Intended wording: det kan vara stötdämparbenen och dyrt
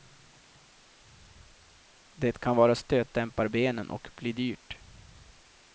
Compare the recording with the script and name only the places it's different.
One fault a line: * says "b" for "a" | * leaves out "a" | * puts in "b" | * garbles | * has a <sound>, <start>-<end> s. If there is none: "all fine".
* puts in "bli"